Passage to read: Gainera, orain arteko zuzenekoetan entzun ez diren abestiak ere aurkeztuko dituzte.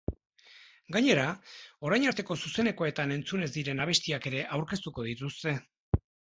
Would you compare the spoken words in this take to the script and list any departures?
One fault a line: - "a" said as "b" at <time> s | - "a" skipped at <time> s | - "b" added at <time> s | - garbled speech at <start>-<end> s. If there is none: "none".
none